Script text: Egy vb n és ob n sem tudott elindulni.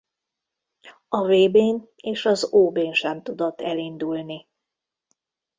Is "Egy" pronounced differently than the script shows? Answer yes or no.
yes